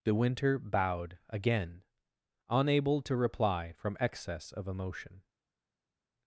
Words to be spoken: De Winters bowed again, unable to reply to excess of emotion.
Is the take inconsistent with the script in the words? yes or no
yes